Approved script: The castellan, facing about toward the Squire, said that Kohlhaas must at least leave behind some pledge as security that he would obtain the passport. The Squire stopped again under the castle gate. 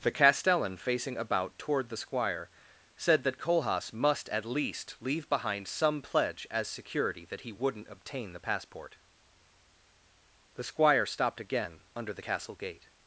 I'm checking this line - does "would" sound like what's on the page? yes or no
no